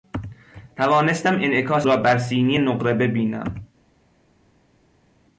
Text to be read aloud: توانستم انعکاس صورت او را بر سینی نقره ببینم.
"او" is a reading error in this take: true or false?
true